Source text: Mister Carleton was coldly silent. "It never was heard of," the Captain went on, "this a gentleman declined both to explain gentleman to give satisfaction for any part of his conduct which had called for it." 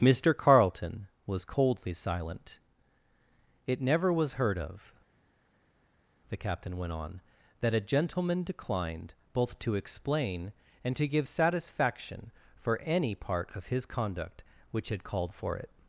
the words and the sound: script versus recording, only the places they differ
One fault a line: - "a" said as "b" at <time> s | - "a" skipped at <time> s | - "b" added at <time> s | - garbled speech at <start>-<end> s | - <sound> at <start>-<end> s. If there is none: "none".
- "this" said as "that" at 7.6 s
- "gentleman" said as "and" at 10.8 s